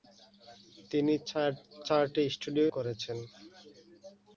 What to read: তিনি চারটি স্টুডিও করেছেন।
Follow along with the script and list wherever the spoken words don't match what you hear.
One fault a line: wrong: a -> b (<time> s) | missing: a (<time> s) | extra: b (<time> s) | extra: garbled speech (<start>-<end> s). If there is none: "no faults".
no faults